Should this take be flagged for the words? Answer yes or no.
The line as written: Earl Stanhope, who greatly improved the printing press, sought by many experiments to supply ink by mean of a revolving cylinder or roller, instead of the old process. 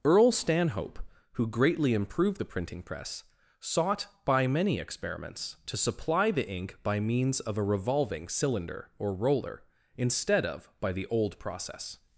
yes